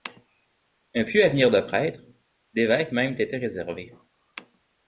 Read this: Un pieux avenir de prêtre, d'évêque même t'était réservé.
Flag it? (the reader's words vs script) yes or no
no